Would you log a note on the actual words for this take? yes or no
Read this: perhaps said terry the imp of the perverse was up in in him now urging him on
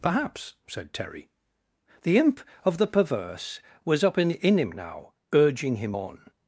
no